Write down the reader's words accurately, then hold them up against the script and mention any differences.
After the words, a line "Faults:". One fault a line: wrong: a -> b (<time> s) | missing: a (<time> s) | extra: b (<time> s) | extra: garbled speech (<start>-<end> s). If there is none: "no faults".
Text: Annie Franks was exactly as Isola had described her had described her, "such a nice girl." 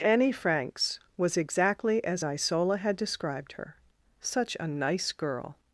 Annie Franks was exactly as Isola had described her, "such a nice girl."
Faults:
missing: had described her (3.8 s)